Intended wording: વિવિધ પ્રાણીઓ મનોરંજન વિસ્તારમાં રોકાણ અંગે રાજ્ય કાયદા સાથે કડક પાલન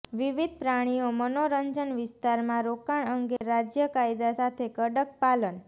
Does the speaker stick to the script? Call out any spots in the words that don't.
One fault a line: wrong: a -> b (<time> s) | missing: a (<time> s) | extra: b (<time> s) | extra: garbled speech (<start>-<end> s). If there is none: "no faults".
no faults